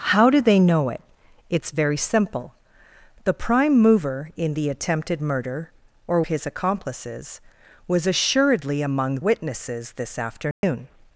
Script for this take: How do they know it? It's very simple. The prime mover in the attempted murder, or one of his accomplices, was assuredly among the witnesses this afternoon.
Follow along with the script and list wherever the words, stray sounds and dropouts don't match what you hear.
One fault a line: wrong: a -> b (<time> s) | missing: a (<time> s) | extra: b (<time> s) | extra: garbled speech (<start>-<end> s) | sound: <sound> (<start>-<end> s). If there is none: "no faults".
missing: one of (6.2 s)
missing: the (9.2 s)
sound: dropout (10.5-10.6 s)